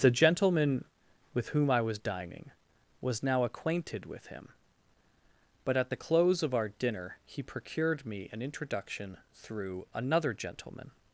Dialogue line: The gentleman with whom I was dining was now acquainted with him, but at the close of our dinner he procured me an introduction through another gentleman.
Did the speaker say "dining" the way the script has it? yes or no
yes